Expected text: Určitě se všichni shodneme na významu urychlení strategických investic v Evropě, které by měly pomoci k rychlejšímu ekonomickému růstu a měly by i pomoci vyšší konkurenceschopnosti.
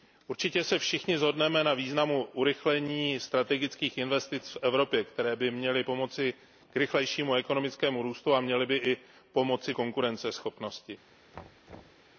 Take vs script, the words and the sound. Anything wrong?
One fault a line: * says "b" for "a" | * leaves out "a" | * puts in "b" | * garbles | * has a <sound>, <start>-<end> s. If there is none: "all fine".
* leaves out "vyšší"
* has a thud, 11.3-12.1 s